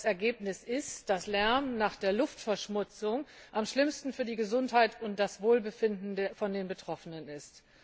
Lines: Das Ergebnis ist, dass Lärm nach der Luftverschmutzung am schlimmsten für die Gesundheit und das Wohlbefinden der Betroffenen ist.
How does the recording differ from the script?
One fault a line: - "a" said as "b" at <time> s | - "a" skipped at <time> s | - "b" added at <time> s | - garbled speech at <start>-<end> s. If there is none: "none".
none